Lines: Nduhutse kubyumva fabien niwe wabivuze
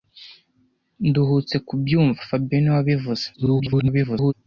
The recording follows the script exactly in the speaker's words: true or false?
false